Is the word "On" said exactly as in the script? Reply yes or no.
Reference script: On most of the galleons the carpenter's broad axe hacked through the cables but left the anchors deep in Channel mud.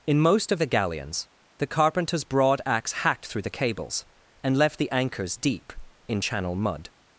no